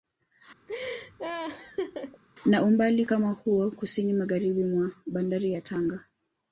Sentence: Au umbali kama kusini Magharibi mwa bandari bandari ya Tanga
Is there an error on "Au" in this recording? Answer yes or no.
yes